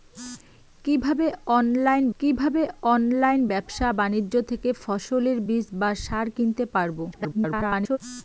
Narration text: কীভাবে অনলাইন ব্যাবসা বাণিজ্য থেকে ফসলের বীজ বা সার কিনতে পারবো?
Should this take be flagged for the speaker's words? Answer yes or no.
yes